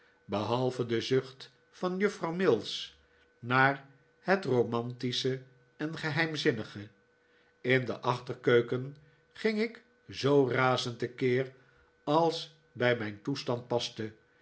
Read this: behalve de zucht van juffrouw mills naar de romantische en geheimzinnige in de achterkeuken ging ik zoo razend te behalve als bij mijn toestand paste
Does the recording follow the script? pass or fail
fail